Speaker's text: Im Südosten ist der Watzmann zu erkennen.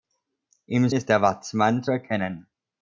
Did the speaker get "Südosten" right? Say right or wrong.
wrong